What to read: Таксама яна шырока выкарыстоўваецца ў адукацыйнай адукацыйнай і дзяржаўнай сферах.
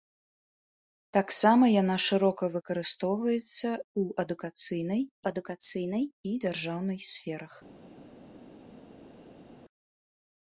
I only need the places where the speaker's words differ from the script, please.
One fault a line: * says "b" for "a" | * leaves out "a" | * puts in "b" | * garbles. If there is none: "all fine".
all fine